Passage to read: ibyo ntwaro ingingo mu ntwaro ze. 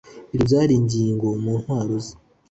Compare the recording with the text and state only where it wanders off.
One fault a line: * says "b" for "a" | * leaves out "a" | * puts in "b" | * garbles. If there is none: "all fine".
* says "byari" for "ntwaro"